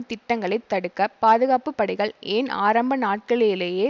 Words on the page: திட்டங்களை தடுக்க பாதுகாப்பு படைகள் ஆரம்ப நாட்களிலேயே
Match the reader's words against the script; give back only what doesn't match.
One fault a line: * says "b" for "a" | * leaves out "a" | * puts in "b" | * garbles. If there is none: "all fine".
* puts in "ஏன்"